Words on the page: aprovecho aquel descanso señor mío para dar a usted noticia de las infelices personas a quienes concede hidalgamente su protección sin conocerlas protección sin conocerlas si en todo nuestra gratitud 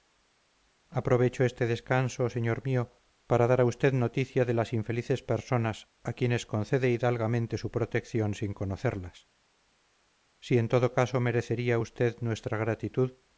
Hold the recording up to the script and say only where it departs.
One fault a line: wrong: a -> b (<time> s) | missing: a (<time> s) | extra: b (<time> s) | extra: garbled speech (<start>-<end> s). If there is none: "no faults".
wrong: aquel -> este (1.5 s)
wrong: protección sin conocerlas si en todo -> si en todo caso merecería usted (10.4 s)